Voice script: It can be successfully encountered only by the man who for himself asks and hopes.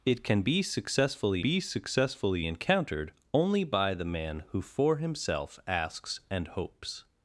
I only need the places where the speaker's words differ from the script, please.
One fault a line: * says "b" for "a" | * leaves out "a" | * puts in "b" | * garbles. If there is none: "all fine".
* puts in "be successfully"